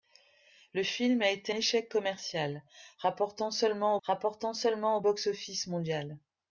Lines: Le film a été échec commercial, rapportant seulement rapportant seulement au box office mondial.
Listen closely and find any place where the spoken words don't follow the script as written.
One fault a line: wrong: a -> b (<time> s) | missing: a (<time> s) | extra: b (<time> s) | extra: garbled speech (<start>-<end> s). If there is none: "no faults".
no faults